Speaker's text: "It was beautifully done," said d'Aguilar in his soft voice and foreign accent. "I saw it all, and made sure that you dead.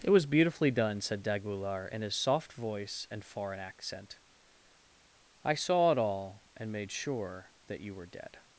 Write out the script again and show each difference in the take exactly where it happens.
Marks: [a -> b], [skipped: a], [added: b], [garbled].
"It was beautifully done," said d'Aguilar in his soft voice and foreign accent. "I saw it all, and made sure that you [added: were] dead.